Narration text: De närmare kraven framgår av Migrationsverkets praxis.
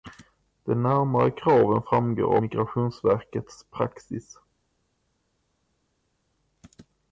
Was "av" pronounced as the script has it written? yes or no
no